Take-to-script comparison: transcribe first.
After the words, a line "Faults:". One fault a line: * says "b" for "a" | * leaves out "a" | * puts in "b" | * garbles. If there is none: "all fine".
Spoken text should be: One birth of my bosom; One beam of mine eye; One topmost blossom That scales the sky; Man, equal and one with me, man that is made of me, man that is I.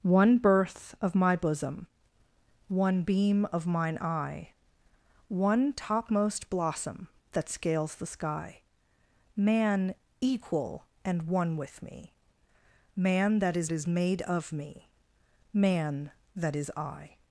One birth of my bosom; One beam of mine eye; One topmost blossom That scales the sky; Man, equal and one with me, man that is is made of me, man that is I.
Faults:
* puts in "is"